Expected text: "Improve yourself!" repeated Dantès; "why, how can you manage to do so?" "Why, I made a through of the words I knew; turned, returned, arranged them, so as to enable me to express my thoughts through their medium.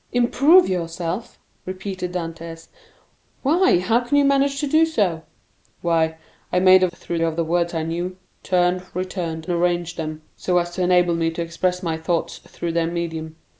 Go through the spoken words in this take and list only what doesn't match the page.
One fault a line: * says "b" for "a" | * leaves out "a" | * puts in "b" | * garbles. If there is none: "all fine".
all fine